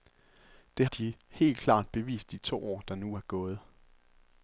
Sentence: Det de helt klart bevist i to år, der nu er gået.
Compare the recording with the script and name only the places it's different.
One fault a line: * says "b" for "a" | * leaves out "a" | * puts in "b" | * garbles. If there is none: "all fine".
all fine